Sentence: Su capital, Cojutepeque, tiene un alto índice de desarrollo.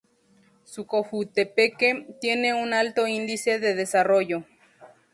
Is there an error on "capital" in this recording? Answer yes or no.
yes